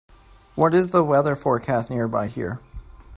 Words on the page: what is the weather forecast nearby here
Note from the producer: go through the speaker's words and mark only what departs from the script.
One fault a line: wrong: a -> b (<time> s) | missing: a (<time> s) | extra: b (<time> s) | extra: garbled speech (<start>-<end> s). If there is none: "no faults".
no faults